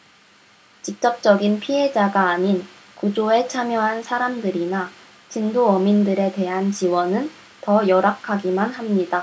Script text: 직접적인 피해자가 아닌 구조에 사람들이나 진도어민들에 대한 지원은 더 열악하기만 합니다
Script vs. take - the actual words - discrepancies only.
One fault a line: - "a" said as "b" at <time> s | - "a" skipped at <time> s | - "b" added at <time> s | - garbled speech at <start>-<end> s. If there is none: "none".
- "참여한" added at 3.5 s